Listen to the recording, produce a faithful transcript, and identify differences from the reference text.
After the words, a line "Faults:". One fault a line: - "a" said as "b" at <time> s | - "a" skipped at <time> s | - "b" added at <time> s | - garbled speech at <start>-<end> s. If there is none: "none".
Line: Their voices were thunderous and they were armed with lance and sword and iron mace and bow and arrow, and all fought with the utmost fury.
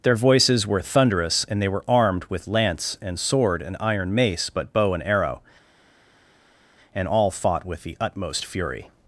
Their voices were thunderous and they were armed with lance and sword and iron mace but bow and arrow, and all fought with the utmost fury.
Faults:
- "and" said as "but" at 4.5 s